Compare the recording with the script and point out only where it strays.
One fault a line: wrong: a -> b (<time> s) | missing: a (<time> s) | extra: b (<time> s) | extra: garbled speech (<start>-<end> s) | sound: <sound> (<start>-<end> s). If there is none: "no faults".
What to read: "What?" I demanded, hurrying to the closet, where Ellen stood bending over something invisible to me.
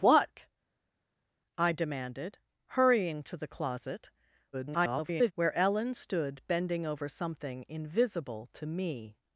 extra: garbled speech (4.5-5.3 s)